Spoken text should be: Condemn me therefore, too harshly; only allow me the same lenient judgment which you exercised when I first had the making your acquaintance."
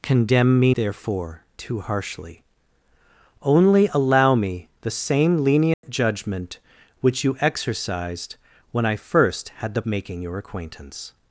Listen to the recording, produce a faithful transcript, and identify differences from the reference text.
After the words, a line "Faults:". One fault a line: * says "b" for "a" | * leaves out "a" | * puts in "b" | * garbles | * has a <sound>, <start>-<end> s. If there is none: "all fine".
Condemn me therefore, too harshly; only allow me the same lenient judgment which you exercised when I first had the making your acquaintance."
Faults:
* has a dropout, 5.7-5.8 s